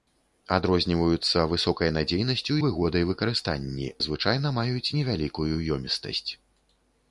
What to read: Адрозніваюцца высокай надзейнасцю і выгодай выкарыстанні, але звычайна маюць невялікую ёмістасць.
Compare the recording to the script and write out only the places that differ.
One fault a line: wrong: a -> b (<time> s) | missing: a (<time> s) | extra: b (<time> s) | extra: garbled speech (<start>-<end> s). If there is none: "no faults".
missing: і (2.5 s)
missing: але (3.9 s)